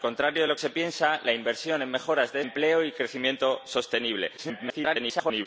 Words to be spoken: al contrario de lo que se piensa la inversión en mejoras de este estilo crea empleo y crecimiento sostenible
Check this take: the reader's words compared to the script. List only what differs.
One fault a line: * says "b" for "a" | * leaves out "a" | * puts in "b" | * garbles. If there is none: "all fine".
* leaves out "que"
* leaves out "este estilo crea"
* garbles